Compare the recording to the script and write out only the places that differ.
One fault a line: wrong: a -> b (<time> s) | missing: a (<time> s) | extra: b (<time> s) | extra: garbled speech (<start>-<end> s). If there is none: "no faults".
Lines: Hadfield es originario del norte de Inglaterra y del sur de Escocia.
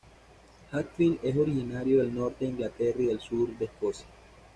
no faults